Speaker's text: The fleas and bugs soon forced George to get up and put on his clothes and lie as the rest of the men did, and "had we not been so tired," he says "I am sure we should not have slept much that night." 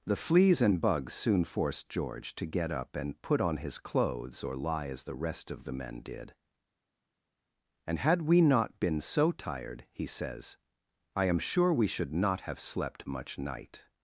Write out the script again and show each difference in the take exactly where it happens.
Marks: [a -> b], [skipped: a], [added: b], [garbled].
The fleas and bugs soon forced George to get up and put on his clothes [and -> or] lie as the rest of the men did, and "had we not been so tired," he says "I am sure we should not have slept much [skipped: that] night."